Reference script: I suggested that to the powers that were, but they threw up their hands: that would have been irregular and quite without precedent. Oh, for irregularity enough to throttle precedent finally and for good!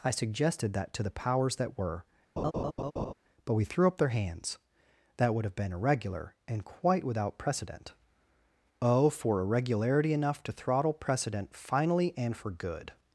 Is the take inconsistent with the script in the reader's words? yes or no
yes